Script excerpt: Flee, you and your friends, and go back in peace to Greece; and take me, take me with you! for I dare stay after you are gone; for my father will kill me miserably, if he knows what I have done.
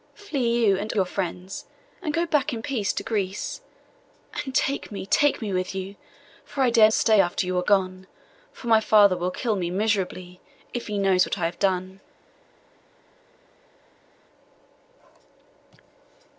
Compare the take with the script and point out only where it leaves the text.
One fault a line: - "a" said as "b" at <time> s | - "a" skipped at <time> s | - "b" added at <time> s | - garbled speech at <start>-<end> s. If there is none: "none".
none